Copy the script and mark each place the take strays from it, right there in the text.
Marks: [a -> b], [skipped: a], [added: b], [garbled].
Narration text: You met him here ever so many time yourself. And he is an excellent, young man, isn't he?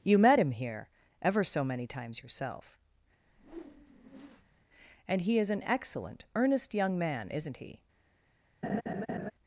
You met him here ever so many [time -> times] yourself. And he is an excellent, [added: earnest] young man, isn't he?